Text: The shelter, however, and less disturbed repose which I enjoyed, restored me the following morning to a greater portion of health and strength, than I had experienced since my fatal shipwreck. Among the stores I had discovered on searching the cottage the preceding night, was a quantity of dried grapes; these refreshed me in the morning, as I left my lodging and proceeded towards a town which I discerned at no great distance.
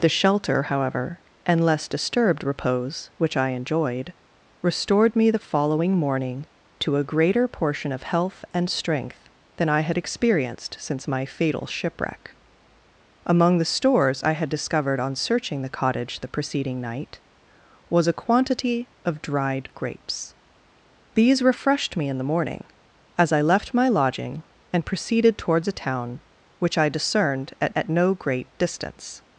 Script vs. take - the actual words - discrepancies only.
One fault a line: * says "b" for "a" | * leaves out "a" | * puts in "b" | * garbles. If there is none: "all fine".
* puts in "at"